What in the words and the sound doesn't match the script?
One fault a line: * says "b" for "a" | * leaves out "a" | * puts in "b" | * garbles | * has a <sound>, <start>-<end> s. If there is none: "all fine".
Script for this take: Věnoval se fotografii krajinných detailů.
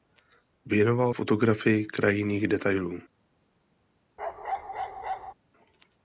* leaves out "se"
* has a bark, 4.2-5.3 s